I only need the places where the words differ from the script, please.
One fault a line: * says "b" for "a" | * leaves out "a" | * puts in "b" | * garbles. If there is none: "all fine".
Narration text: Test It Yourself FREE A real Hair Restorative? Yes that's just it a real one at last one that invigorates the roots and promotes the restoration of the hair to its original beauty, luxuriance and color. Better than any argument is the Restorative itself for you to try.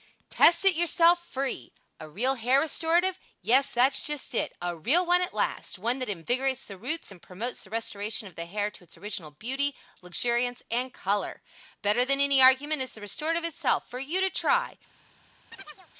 all fine